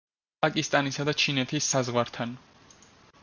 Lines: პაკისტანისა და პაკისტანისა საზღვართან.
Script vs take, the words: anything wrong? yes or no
yes